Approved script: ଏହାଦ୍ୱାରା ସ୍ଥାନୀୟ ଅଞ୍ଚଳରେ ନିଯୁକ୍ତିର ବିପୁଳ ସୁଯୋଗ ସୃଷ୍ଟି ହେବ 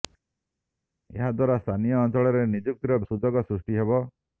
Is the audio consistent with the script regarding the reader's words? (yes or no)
no